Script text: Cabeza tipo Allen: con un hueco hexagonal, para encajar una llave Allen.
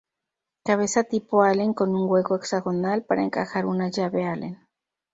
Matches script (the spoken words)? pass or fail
pass